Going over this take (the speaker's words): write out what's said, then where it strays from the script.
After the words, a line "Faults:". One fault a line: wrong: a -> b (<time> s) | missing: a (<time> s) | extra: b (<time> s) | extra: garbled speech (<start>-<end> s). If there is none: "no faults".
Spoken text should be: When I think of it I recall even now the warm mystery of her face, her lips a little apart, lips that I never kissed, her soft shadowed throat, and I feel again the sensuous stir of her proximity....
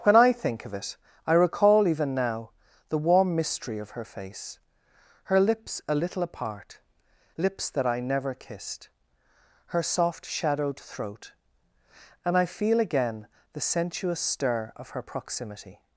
When I think of it I recall even now the warm mystery of her face, her lips a little apart, lips that I never kissed, her soft shadowed throat, and I feel again the sensuous stir of her proximity....
Faults:
no faults